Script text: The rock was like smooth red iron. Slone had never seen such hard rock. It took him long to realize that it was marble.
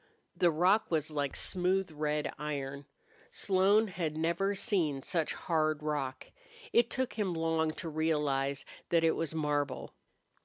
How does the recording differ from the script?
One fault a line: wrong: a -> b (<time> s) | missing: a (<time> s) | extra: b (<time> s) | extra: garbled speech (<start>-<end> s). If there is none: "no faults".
no faults